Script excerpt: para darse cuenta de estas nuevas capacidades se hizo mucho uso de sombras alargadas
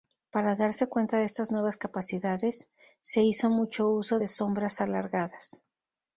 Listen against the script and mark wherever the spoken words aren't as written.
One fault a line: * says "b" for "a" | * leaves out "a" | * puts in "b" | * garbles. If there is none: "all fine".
all fine